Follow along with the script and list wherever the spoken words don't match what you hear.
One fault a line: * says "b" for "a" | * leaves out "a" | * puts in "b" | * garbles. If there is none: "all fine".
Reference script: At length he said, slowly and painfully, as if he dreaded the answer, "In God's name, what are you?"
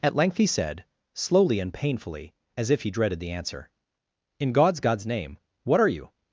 * puts in "God's"